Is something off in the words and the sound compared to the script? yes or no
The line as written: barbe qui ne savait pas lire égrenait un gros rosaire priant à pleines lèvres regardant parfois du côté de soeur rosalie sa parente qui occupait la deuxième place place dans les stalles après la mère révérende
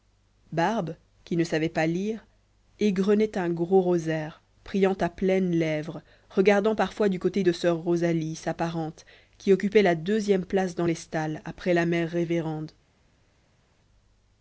yes